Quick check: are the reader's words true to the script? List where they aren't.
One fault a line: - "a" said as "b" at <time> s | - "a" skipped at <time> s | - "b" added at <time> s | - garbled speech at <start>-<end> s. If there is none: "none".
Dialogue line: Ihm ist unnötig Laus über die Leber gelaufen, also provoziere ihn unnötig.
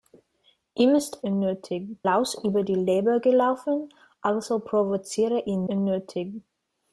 none